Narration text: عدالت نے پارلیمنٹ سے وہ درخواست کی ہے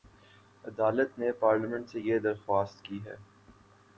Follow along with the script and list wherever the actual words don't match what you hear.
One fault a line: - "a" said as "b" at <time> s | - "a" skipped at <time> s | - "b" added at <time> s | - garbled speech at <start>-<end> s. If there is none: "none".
- "وہ" said as "یہ" at 2.0 s